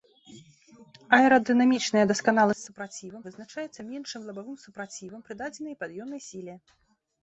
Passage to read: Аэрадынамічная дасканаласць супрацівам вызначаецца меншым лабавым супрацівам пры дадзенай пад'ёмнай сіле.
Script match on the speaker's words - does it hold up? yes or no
yes